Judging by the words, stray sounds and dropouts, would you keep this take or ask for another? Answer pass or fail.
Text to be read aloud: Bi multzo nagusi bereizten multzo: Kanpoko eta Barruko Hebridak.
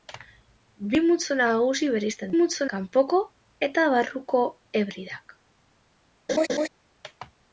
fail